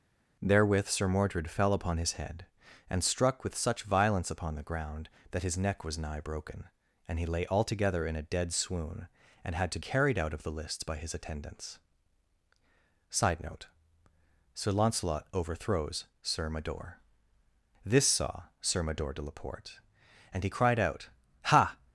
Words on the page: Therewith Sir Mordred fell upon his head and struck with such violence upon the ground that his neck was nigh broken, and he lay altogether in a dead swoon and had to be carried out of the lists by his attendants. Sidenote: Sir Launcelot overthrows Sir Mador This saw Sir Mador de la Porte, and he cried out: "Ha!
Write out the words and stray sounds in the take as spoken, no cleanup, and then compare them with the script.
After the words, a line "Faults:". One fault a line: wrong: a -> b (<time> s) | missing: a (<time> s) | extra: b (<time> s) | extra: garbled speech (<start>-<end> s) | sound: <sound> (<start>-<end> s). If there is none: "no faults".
Therewith Sir Mordred fell upon his head and struck with such violence upon the ground that his neck was nigh broken, and he lay altogether in a dead swoon and had to carried out of the lists by his attendants. Sidenote: Sir Launcelot overthrows Sir Mador This saw Sir Mador de la Porte, and he cried out: "Ha!
Faults:
missing: be (9.8 s)